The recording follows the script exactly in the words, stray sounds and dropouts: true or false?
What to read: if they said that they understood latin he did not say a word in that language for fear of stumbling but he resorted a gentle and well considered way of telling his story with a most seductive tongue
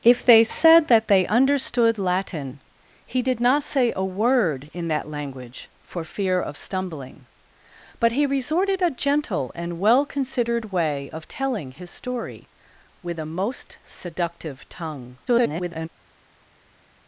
false